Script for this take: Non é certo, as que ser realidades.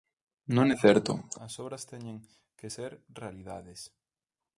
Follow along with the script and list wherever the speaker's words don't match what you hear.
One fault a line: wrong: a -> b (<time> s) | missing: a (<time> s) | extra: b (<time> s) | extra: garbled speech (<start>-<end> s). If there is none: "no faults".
extra: obras teñen (1.6 s)